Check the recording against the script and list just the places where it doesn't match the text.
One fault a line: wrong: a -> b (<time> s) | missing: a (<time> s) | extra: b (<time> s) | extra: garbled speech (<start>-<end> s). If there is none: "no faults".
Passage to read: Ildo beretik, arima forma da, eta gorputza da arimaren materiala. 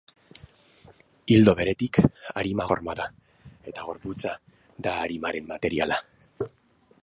no faults